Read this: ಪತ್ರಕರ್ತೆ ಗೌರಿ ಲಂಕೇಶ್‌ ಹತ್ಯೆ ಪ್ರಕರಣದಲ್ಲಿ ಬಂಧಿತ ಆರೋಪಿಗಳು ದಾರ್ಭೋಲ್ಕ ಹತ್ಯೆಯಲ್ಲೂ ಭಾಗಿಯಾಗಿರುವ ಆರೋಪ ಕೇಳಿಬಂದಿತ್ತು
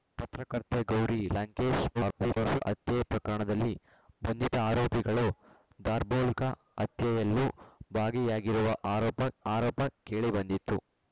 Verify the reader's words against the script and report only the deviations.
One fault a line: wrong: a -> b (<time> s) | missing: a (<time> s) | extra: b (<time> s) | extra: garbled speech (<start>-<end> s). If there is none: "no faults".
extra: garbled speech (1.9-2.6 s)
extra: ಆರೋಪ (9.5 s)